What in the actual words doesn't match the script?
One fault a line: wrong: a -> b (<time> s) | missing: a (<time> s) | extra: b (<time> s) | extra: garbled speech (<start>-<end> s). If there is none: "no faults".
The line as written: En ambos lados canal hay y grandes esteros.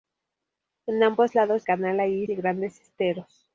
no faults